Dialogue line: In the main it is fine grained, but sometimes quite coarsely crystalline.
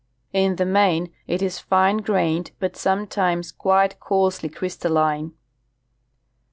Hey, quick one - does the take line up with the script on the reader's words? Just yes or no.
yes